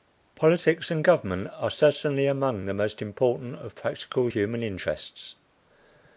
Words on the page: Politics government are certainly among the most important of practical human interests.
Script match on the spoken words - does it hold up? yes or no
no